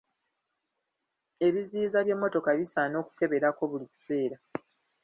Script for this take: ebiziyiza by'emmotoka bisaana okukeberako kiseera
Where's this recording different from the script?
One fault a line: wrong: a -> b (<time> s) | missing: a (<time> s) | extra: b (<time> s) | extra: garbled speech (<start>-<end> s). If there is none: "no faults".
extra: buli (3.7 s)